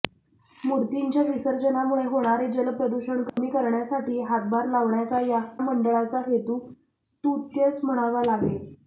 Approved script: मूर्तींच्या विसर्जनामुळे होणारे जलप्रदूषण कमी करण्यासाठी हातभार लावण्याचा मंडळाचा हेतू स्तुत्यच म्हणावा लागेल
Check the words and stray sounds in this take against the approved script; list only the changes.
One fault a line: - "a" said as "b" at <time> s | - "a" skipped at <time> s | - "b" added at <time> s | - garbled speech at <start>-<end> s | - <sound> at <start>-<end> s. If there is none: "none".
- dropout at 3.3-3.4 s